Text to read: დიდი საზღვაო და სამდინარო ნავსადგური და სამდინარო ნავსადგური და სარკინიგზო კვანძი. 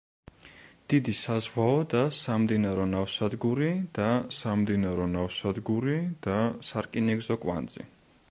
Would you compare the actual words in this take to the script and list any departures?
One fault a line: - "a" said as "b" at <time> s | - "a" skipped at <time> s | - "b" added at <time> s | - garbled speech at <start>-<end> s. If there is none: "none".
none